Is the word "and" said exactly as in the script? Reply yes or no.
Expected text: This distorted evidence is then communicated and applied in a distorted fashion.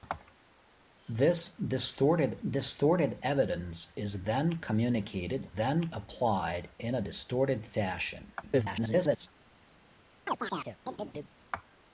no